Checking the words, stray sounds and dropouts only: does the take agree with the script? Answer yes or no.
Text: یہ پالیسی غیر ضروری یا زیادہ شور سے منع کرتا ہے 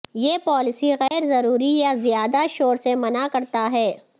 no